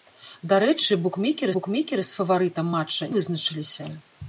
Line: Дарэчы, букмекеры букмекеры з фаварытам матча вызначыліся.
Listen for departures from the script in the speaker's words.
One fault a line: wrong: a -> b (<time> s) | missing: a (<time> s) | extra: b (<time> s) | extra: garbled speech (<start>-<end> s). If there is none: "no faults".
no faults